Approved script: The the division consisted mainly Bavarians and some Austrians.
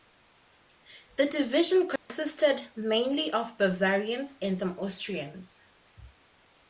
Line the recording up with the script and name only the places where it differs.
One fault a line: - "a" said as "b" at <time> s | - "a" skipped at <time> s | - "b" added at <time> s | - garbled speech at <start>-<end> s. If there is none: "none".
- "the" skipped at 1.3 s
- "of" added at 3.3 s